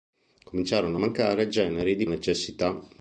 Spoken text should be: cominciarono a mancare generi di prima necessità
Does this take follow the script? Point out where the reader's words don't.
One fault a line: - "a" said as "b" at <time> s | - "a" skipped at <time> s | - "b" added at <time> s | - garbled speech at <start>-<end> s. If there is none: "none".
- "prima" skipped at 2.1 s